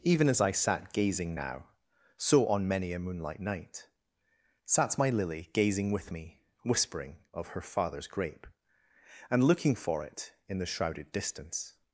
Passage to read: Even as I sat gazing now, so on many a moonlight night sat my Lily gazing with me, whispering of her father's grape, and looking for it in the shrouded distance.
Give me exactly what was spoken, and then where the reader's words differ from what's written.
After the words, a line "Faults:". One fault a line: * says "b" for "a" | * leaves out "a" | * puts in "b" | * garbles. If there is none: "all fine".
Even as I sat gazing now, so on many a moonlight night sat my Lily gazing with me, whispering of her father's grape, and looking for it in the shrouded distance.
Faults:
all fine